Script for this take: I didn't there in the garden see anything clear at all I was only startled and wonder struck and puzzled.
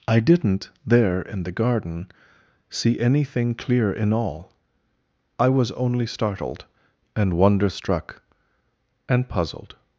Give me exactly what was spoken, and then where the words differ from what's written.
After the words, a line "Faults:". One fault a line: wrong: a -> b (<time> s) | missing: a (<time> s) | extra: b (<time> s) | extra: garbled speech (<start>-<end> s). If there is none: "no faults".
I didn't there in the garden see anything clear in all I was only startled and wonder struck and puzzled.
Faults:
wrong: at -> in (3.9 s)